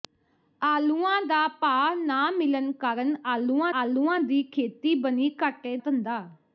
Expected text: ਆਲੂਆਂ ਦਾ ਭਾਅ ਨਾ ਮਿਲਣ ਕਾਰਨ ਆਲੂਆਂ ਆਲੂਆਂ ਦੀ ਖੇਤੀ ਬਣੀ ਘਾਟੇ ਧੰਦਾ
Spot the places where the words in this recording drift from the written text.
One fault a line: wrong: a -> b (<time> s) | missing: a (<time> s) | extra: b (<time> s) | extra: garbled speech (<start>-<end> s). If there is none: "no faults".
no faults